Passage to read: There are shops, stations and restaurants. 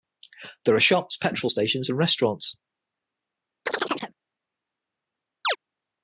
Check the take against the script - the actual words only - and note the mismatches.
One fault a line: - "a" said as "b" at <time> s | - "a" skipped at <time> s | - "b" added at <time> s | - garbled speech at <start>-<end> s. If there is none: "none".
- "petrol" added at 1.2 s